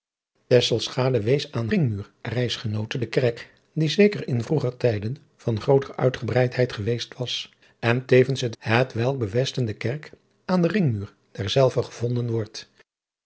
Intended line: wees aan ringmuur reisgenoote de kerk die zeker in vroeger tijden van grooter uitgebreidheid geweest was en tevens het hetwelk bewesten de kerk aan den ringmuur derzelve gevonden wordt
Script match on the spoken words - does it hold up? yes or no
yes